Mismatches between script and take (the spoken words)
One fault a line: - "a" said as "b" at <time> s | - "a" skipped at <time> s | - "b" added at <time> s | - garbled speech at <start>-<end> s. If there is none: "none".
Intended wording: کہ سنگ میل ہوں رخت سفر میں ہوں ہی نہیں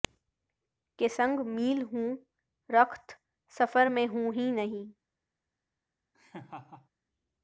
none